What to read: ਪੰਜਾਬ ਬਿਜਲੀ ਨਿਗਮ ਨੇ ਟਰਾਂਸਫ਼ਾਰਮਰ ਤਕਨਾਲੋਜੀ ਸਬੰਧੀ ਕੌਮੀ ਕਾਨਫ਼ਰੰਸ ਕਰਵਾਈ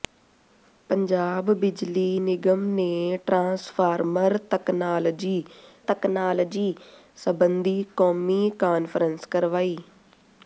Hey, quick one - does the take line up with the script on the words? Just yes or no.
no